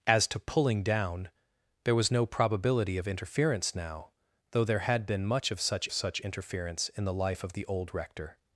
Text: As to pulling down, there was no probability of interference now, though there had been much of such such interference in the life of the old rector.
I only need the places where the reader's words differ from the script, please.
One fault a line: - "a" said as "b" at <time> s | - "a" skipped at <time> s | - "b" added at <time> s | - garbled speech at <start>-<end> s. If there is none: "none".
none